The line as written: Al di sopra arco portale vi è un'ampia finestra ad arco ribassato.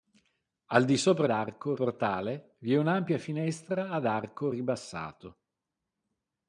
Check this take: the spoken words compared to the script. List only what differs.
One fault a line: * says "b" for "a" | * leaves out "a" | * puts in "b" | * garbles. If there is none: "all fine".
all fine